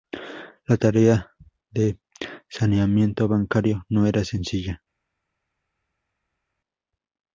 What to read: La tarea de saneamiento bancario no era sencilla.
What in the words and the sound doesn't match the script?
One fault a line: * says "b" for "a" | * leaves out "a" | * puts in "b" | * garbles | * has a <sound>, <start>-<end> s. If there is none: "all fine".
all fine